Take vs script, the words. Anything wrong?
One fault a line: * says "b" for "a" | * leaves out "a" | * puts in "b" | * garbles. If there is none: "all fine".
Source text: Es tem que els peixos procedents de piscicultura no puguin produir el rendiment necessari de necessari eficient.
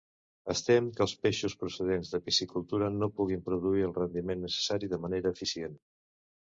* says "manera" for "necessari"